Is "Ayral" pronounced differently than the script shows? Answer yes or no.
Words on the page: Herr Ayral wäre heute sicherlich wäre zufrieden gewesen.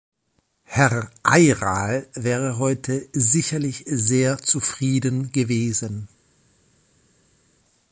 no